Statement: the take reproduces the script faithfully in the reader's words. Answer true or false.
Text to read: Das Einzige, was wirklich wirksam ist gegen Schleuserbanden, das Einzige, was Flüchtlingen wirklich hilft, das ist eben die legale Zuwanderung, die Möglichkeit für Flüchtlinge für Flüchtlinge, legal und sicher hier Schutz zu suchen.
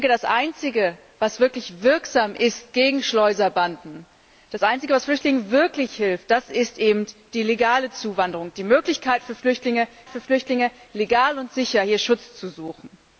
true